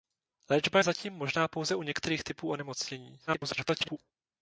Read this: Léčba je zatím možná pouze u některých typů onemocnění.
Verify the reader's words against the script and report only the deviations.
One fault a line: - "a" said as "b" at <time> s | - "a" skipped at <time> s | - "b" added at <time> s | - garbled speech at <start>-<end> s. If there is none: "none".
- garbled speech at 3.3-4.0 s